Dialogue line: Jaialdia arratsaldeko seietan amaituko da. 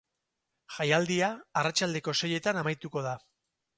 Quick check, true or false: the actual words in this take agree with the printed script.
true